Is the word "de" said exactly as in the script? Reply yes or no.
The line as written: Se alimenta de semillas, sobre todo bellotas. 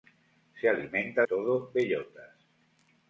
no